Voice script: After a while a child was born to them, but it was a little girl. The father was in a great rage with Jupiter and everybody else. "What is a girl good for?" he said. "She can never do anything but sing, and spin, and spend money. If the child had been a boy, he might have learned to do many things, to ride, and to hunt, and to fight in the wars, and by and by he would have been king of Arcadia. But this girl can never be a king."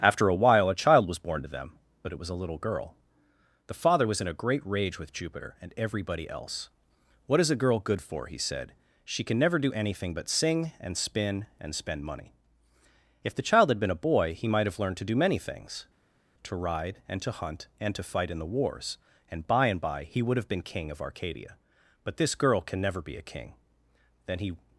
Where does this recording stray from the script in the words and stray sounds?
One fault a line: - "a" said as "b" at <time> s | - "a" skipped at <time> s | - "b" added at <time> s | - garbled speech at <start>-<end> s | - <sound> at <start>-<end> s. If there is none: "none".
- "Then he" added at 24.3 s